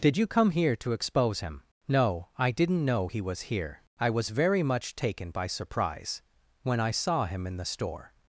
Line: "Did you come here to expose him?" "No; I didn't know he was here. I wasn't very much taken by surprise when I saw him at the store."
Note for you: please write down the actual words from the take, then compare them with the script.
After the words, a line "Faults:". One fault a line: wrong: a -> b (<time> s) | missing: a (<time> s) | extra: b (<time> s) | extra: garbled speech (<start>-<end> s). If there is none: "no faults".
"Did you come here to expose him?" "No; I didn't know he was here. I was very much taken by surprise when I saw him in the store."
Faults:
wrong: wasn't -> was (4.1 s)
wrong: at -> in (7.5 s)